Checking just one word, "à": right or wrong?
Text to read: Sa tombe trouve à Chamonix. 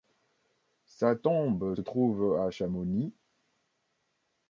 right